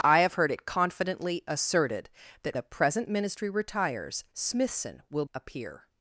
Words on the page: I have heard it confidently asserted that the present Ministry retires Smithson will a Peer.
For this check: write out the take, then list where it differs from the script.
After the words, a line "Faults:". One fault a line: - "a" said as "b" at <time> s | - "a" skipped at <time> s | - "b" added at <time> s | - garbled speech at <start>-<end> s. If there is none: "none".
I have heard it confidently asserted that the present Ministry retires Smithson will a Peer.
Faults:
none